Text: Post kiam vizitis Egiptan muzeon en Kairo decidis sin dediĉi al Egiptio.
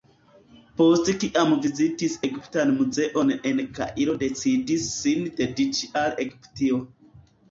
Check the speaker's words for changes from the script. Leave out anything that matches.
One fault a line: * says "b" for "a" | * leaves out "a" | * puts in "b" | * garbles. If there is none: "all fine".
all fine